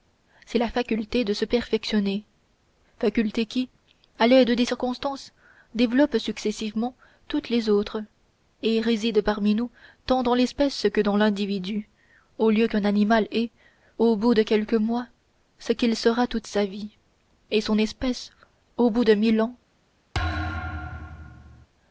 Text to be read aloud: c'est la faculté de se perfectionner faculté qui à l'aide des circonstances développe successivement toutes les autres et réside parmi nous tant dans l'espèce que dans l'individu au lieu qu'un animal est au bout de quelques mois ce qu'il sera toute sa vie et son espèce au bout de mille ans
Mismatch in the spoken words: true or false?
false